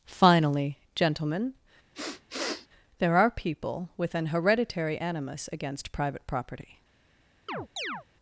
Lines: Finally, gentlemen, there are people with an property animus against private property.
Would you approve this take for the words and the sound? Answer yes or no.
no